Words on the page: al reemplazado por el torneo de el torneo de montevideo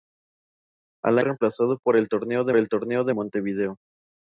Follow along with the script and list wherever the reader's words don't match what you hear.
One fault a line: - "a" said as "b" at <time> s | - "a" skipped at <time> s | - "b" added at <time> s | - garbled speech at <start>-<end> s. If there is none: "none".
none